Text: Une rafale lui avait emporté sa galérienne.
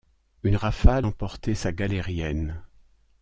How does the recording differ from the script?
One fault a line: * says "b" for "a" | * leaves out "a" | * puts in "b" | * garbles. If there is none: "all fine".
* leaves out "lui avait"